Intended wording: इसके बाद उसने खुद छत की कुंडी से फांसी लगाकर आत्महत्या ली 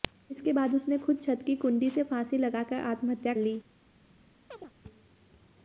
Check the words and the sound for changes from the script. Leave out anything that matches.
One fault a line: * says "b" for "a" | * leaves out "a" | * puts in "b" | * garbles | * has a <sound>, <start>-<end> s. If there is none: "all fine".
* has a chirp, 4.5-4.7 s